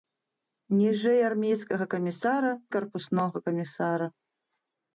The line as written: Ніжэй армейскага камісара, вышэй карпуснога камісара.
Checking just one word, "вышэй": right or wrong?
wrong